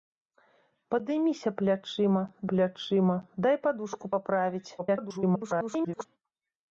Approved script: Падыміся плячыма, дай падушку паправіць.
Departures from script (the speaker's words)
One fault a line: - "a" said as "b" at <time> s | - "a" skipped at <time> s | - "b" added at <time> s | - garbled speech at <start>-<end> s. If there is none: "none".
- "плячыма" added at 2.5 s
- garbled speech at 4.8-6.1 s